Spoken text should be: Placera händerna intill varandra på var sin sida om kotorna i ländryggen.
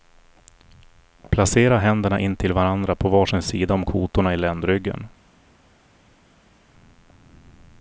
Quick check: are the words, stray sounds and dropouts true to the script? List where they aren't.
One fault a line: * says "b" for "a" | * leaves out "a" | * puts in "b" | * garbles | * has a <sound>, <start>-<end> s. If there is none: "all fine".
all fine